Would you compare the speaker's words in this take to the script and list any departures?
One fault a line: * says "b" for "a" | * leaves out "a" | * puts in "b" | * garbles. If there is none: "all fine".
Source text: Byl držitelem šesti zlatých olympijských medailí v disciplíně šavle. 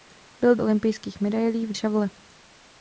* leaves out "držitelem šesti zlatých"
* leaves out "disciplíně"